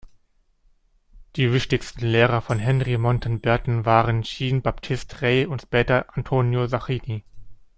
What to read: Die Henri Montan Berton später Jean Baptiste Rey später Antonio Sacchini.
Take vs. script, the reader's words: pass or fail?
fail